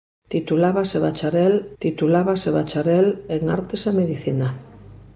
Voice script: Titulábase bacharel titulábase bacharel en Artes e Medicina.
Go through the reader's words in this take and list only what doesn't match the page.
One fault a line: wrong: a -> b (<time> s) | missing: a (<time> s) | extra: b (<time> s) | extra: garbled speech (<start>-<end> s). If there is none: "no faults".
no faults